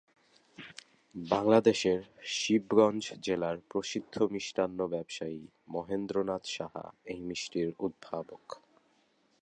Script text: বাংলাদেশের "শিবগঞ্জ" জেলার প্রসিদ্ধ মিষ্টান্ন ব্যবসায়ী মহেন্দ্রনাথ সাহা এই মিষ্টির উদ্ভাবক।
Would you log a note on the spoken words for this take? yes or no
no